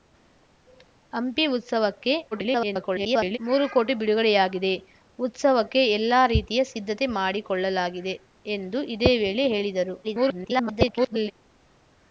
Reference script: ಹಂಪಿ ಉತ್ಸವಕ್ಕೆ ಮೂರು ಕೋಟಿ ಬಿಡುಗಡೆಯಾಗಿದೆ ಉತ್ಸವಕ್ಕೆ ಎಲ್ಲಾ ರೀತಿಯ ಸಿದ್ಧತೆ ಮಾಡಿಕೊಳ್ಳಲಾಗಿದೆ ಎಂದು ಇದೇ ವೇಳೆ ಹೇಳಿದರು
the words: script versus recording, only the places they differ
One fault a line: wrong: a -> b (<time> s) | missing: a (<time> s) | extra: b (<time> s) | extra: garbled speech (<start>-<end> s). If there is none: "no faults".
extra: garbled speech (2.3-3.4 s)
extra: garbled speech (10.0-11.3 s)